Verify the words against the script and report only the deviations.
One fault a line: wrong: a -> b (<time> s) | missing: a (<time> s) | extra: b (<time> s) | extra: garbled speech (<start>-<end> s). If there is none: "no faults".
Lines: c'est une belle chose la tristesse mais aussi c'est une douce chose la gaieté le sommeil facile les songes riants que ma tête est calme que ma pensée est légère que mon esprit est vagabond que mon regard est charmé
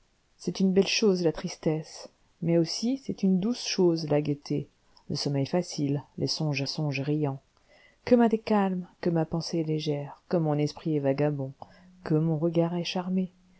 extra: songes (6.6 s)
missing: tête (8.3 s)